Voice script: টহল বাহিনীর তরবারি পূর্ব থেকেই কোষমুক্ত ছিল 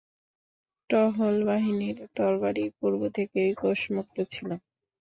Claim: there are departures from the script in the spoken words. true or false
false